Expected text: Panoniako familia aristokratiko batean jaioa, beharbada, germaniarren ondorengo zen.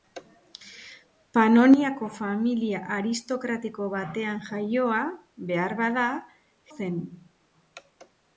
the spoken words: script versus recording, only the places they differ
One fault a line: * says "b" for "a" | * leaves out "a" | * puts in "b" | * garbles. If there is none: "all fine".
* leaves out "germaniarren ondorengo"